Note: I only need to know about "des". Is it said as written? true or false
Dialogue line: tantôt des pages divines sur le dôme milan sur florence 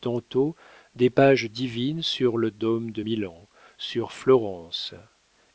true